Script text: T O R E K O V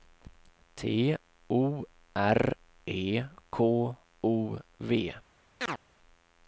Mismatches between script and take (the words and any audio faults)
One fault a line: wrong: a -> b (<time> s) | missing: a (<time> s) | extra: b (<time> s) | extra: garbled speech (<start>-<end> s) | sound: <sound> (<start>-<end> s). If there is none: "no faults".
sound: chirp (5.6-5.8 s)